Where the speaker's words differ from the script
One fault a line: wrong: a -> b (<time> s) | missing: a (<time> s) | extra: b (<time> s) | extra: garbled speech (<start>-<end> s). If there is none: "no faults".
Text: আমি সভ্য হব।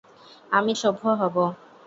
no faults